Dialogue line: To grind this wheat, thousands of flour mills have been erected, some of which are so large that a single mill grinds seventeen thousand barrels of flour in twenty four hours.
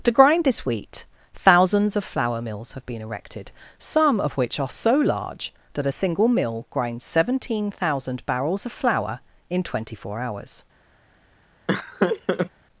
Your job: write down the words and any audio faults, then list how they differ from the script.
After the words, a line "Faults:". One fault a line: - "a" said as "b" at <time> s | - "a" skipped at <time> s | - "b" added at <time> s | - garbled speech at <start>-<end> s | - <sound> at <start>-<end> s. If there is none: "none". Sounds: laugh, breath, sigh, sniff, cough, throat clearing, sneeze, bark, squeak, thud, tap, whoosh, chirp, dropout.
To grind this wheat, thousands of flour mills have been erected, some of which are so large that a single mill grinds seventeen thousand barrels of flour in twenty four hours.
Faults:
- laugh at 11.7-12.5 s